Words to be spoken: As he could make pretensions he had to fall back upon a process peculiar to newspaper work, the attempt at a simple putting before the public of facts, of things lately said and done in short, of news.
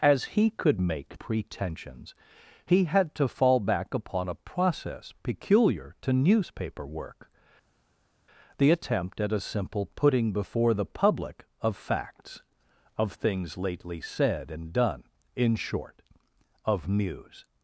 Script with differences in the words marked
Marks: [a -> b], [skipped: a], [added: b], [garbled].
As he could make pretensions he had to fall back upon a process peculiar to newspaper work, the attempt at a simple putting before the public of facts, of things lately said and done in short, of news.